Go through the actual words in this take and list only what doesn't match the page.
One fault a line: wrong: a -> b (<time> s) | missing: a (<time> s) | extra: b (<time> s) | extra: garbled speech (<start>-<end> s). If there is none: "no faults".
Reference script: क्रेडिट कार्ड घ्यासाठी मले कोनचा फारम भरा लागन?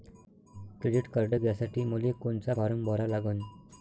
no faults